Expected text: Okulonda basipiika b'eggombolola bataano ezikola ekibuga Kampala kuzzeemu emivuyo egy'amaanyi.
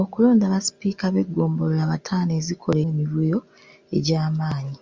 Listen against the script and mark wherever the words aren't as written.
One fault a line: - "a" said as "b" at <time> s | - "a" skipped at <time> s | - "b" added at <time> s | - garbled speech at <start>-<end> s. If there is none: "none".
- "ekibuga Kampala kuzzeemu" skipped at 2.8 s